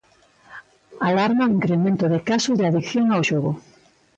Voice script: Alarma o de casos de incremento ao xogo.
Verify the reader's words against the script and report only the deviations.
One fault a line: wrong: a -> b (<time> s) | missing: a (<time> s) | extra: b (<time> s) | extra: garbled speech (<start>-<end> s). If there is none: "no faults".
extra: incremento (1.6 s)
wrong: incremento -> adicción (2.7 s)